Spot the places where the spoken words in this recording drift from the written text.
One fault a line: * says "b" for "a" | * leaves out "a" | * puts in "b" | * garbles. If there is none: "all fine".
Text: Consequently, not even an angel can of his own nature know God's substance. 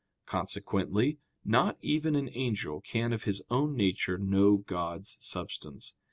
all fine